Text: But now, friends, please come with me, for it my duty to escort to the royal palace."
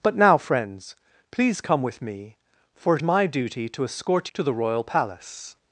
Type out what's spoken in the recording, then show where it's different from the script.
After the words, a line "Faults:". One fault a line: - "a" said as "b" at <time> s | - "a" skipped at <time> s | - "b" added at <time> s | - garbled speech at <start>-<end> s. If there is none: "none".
But now, friends, please come with me, for it my duty to escort to the royal palace."
Faults:
none